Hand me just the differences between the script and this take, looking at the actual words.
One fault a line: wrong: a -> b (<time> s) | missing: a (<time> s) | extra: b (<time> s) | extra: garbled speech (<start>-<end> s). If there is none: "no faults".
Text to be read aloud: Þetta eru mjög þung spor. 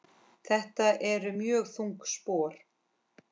no faults